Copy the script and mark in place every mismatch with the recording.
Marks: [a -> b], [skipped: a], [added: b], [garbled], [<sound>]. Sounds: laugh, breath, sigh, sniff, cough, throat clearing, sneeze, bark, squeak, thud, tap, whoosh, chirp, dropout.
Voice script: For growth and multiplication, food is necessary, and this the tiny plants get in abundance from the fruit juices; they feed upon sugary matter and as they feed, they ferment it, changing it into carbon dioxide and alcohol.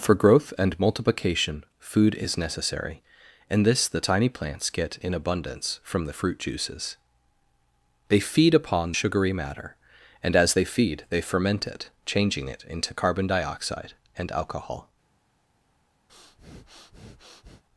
For growth and multiplication, food is necessary, and this the tiny plants get in abundance from the fruit juices; they feed upon sugary matter and as they feed, they ferment it, changing it into carbon dioxide and alcohol. [breath]